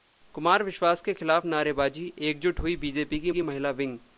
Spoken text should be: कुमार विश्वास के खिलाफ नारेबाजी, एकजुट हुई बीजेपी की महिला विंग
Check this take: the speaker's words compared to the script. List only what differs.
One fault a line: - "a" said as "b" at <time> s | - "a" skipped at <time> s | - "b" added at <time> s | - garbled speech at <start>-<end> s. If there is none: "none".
- "की" added at 3.3 s